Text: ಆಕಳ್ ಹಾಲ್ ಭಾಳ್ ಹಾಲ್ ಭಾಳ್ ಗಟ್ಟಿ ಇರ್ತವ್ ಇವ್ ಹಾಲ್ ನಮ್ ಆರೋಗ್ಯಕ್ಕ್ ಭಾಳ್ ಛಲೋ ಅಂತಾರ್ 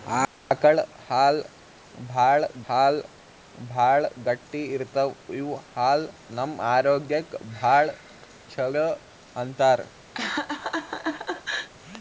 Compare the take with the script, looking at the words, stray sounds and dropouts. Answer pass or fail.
fail